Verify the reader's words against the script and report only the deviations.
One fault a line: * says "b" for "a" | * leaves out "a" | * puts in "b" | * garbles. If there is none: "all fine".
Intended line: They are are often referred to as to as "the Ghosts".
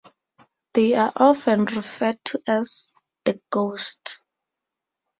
* leaves out "are"
* leaves out "to as"